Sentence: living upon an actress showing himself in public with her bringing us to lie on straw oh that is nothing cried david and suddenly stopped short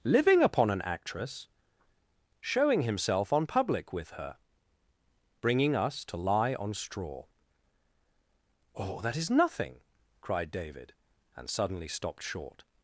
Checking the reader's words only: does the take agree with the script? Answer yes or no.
no